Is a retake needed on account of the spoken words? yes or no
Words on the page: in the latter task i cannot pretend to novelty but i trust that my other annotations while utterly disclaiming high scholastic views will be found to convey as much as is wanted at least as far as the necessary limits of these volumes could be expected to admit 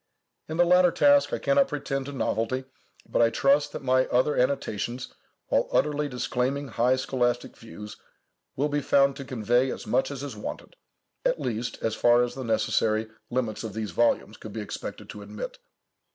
no